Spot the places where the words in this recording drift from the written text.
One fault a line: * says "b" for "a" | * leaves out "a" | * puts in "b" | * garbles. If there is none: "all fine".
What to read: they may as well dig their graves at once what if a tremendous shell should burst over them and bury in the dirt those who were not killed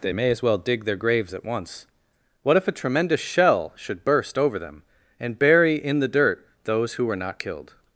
all fine